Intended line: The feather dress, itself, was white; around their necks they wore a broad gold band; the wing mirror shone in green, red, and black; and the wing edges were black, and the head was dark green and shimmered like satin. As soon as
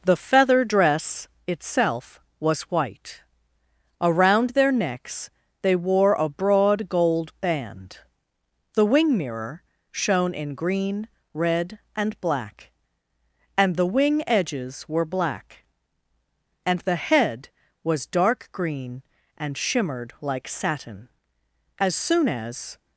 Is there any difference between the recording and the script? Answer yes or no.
no